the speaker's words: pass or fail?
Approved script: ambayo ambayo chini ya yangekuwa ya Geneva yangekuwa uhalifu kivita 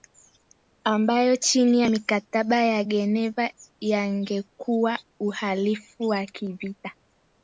fail